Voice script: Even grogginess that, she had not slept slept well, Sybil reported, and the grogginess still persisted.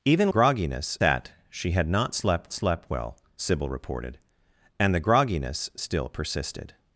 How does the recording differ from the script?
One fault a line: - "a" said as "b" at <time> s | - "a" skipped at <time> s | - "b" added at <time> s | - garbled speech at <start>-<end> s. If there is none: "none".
none